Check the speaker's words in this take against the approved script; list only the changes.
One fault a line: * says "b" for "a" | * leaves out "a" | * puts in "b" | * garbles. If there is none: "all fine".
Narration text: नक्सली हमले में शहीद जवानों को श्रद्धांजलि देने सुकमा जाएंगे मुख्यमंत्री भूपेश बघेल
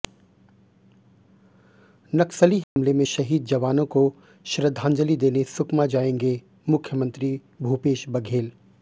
all fine